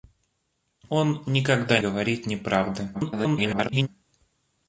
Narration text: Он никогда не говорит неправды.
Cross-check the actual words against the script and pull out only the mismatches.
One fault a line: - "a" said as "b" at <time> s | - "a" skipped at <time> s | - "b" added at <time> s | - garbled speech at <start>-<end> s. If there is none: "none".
- "не" skipped at 1.8 s
- garbled speech at 2.9-3.9 s